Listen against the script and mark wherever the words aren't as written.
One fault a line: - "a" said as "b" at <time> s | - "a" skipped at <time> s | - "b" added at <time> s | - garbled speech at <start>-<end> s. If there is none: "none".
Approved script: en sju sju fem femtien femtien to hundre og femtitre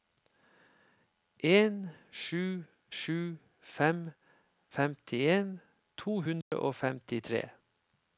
- "femtien" skipped at 5.5 s